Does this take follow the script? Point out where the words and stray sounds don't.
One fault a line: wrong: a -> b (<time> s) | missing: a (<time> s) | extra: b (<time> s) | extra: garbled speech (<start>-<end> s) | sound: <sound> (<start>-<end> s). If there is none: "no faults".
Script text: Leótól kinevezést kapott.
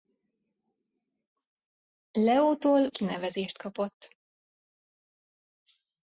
no faults